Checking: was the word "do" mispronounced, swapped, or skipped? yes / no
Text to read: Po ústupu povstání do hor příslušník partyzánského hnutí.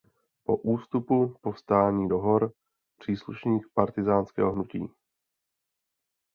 no